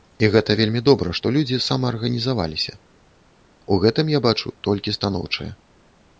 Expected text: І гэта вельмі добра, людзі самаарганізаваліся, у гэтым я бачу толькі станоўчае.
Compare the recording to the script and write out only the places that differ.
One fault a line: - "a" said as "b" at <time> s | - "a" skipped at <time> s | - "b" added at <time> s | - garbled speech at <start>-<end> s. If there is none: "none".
- "што" added at 1.2 s